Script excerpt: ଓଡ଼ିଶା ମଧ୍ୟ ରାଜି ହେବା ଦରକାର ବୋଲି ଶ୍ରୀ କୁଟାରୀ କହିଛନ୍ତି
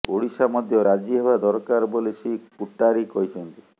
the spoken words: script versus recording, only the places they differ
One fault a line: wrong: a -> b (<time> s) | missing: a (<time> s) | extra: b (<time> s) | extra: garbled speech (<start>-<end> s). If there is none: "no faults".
no faults